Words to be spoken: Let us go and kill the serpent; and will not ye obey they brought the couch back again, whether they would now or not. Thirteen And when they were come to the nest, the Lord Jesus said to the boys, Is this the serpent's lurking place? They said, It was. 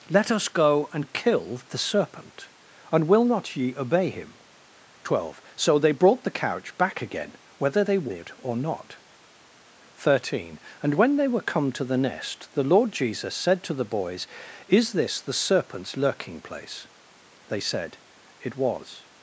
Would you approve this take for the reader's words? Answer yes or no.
no